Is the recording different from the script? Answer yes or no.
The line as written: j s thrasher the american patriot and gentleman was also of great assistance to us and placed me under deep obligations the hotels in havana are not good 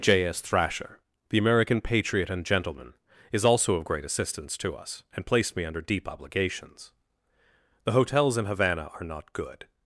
yes